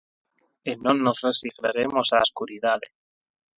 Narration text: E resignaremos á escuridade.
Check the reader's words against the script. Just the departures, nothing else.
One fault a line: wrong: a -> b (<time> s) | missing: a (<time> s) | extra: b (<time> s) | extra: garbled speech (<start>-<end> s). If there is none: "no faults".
extra: non nos (0.8 s)